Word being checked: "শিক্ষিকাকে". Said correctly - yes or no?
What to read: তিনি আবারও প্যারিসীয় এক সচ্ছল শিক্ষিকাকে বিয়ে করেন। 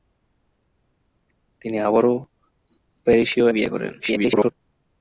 no